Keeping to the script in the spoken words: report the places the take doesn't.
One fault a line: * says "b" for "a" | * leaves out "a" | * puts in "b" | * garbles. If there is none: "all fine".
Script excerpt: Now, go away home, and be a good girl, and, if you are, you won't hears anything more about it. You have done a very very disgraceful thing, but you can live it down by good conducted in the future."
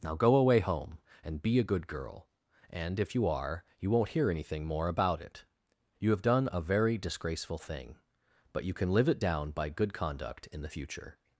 * says "hear" for "hears"
* leaves out "very"
* says "conduct" for "conducted"